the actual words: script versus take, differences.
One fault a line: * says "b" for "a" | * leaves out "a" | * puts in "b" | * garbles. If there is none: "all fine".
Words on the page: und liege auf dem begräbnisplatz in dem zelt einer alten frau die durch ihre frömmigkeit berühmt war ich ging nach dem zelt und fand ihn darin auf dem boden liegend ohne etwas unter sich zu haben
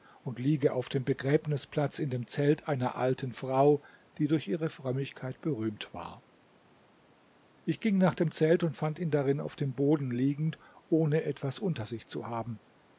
all fine